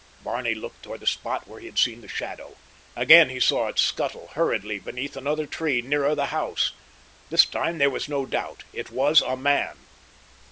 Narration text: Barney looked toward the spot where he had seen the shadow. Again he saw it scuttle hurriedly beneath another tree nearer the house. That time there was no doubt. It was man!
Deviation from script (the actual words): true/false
true